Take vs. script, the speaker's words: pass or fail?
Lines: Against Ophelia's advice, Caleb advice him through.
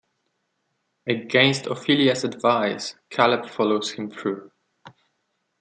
fail